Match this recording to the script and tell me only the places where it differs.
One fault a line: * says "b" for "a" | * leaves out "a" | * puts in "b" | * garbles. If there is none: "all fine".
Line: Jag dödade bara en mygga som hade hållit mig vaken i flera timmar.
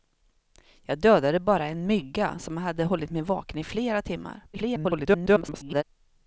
* garbles